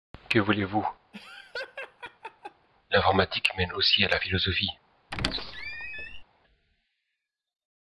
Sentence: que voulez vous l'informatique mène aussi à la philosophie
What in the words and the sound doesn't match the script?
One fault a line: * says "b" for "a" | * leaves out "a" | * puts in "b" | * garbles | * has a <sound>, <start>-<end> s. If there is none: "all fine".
* has a laugh, 1.1-2.7 s
* has a squeak, 5.1-6.2 s